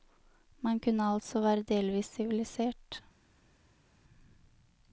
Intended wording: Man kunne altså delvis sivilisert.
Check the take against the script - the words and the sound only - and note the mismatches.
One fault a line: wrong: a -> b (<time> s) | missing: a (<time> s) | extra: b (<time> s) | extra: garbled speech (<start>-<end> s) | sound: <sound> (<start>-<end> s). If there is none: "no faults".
extra: være (1.4 s)